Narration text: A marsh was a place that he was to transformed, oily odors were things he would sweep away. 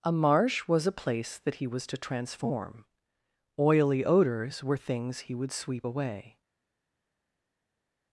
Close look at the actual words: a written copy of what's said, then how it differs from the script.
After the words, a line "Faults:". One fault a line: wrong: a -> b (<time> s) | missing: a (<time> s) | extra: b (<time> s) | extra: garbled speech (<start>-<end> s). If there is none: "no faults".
A marsh was a place that he was to transform, oily odors were things he would sweep away.
Faults:
wrong: transformed -> transform (2.0 s)